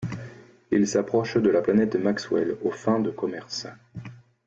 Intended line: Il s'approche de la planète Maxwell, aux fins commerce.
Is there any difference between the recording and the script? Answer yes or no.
yes